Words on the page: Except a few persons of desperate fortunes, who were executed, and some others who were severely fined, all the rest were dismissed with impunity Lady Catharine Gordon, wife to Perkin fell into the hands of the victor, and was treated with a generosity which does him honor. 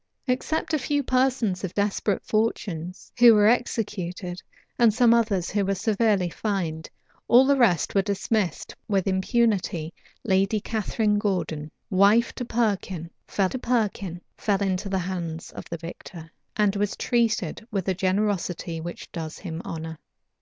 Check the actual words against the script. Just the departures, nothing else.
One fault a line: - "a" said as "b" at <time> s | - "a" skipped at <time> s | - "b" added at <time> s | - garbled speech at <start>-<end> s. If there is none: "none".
- "to Perkin fell" added at 13.5 s